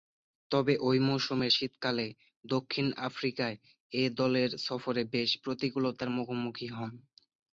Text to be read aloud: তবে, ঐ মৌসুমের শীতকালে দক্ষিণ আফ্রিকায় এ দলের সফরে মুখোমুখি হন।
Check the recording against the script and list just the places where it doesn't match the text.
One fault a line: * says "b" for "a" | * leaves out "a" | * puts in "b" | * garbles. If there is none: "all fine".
* puts in "বেশ প্রতিকূলতার"